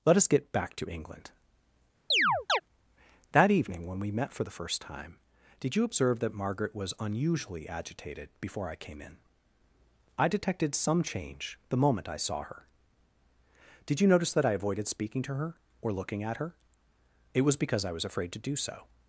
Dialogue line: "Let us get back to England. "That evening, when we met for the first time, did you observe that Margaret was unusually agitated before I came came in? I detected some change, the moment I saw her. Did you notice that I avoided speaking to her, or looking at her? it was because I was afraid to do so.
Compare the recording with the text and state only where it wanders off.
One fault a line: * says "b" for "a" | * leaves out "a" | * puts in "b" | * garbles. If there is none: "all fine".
* leaves out "came"